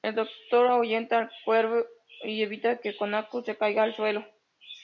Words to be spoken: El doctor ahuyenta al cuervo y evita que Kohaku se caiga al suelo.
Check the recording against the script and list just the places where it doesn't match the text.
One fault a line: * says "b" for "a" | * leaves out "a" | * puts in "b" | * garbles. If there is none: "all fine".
all fine